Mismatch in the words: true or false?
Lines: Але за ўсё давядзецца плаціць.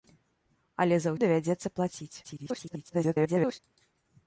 true